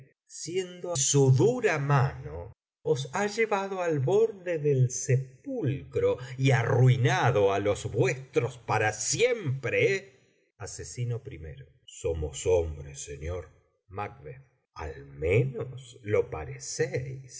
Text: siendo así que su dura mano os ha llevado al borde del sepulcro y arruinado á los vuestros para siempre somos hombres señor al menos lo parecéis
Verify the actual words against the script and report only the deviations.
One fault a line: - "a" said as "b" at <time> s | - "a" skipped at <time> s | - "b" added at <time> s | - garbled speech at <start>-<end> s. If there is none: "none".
- "así que" skipped at 0.9 s